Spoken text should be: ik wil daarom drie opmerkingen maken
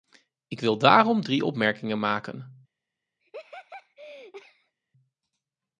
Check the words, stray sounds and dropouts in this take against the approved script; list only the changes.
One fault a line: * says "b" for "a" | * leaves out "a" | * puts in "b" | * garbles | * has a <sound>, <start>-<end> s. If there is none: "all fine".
* has a laugh, 3.2-4.7 s